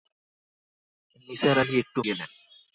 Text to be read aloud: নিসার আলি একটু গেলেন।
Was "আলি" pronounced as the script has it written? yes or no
yes